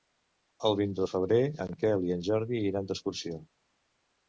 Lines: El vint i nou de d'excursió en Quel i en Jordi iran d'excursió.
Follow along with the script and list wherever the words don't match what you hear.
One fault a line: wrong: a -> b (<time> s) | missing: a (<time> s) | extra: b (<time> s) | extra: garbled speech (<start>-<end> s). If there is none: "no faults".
wrong: d'excursió -> febrer (1.2 s)